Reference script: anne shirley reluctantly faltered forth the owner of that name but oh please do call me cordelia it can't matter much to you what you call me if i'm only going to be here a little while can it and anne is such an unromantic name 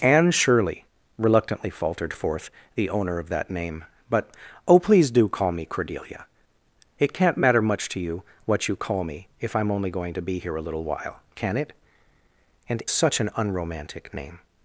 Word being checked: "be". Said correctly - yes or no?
yes